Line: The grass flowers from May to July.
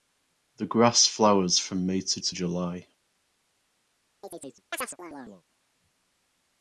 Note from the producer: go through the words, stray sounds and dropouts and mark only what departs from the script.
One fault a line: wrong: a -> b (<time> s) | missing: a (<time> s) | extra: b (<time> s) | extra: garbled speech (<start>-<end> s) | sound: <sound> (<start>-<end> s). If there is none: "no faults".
extra: to (2.2 s)
sound: chirp (4.2-5.4 s)